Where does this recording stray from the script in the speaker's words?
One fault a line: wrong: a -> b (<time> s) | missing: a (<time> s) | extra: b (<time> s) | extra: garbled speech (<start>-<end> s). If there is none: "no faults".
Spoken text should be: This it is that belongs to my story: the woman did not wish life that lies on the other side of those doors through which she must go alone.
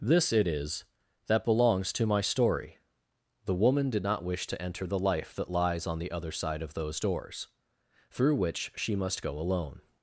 extra: to enter the (4.5 s)